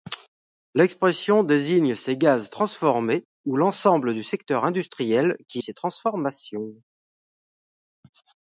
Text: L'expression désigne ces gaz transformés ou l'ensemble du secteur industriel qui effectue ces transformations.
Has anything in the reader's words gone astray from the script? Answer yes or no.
yes